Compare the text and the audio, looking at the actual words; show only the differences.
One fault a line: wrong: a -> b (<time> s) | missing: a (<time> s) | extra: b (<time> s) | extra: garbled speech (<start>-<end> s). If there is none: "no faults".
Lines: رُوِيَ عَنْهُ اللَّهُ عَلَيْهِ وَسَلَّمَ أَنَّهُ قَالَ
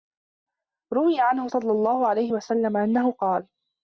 extra: صَلَّى (1.5 s)